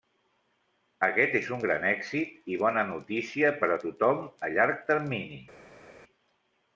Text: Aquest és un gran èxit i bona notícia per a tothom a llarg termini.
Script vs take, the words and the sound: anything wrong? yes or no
no